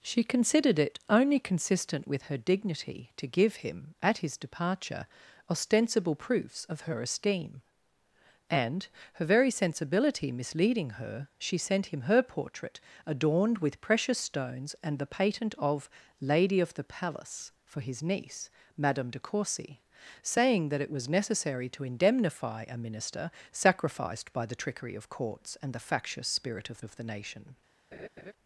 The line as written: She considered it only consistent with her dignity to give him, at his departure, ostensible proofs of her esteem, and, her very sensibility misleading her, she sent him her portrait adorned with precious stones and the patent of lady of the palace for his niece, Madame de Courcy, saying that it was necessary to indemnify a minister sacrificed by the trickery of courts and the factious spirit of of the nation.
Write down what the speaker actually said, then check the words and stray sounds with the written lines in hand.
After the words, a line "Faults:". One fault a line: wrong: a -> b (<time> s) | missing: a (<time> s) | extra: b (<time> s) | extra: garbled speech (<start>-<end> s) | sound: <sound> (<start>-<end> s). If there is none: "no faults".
She considered it only consistent with her dignity to give him, at his departure, ostensible proofs of her esteem, and, her very sensibility misleading her, she sent him her portrait adorned with precious stones and the patent of lady of the palace for his niece, Madame de Courcy, saying that it was necessary to indemnify a minister sacrificed by the trickery of courts and the factious spirit of of the nation.
Faults:
sound: laugh (27.9-28.3 s)